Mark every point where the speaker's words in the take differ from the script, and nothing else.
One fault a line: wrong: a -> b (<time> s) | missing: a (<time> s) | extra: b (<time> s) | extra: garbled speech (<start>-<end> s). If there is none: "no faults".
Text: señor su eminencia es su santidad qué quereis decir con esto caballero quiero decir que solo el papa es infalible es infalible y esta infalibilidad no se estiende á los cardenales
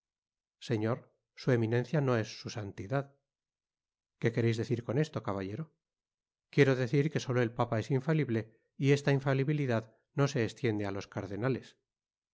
extra: no (2.0 s)
missing: es infalible (8.6 s)